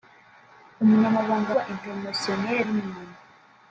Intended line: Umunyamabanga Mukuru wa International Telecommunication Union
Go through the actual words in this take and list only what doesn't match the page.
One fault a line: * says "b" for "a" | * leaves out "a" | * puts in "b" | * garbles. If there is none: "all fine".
* leaves out "Mukuru"
* leaves out "Telecommunication"